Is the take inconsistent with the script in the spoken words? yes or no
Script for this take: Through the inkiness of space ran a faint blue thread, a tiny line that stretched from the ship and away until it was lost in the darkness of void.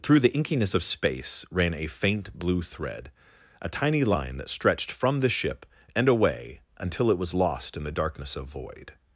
no